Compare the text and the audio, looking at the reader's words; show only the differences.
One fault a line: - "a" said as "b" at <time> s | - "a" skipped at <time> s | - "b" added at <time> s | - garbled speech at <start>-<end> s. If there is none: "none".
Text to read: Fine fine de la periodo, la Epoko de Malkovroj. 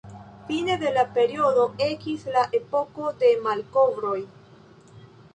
- "fine" skipped at 0.8 s
- "ekis" added at 1.9 s